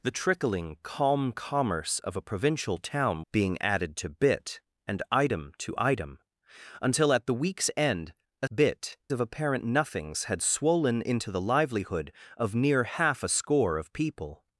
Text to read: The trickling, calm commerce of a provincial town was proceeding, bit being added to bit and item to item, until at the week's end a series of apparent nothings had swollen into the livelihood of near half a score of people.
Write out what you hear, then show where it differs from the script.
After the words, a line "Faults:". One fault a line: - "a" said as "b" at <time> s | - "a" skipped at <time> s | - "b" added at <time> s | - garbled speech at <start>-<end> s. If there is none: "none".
The trickling, calm commerce of a provincial town being added to bit and item to item, until at the week's end a bit of apparent nothings had swollen into the livelihood of near half a score of people.
Faults:
- "was proceeding bit" skipped at 3.2 s
- "series" said as "bit" at 8.5 s